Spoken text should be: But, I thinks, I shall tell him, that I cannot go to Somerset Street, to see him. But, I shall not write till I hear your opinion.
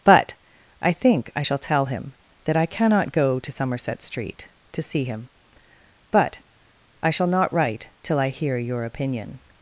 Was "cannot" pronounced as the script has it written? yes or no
yes